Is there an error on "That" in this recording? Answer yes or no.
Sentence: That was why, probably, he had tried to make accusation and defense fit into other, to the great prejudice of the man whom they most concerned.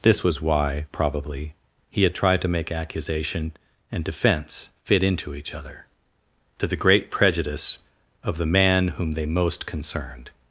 yes